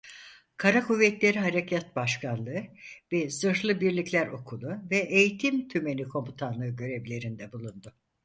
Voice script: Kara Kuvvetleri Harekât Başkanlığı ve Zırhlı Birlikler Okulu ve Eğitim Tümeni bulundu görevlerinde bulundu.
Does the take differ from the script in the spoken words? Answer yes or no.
yes